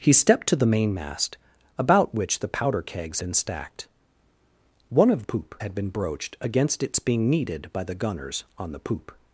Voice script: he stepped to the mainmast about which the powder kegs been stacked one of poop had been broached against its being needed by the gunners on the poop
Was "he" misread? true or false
false